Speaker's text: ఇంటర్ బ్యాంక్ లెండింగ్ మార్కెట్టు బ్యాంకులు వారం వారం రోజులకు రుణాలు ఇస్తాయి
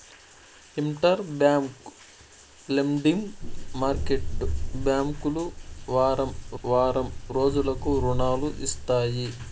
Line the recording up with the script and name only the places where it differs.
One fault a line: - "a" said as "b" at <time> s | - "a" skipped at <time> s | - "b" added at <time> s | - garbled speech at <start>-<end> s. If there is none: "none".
none